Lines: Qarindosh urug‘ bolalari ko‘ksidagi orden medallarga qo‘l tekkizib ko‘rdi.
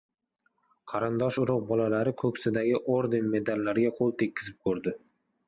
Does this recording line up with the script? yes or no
yes